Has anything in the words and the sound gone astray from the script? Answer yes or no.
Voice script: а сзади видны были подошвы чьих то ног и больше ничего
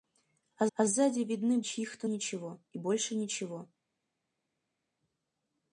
yes